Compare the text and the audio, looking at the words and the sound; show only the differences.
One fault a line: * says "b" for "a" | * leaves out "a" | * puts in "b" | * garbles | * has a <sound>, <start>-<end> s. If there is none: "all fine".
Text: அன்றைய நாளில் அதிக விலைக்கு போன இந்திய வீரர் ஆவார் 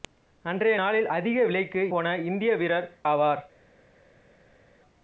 all fine